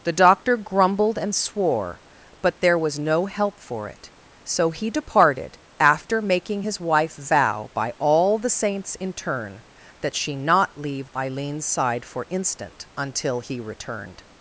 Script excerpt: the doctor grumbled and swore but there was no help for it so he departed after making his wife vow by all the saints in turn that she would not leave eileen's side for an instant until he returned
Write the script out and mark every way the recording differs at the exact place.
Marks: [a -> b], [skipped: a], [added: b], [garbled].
the doctor grumbled and swore but there was no help for it so he departed after making his wife vow by all the saints in turn that she [skipped: would] not leave eileen's side for [skipped: an] instant until he returned